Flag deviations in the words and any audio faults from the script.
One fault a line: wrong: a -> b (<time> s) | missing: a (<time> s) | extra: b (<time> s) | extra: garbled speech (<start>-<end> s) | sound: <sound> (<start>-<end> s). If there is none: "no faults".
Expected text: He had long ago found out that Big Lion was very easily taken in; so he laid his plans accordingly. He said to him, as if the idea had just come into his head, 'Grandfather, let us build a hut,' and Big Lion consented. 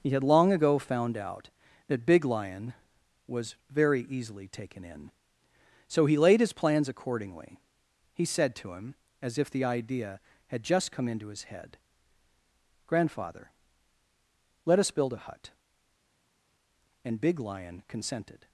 no faults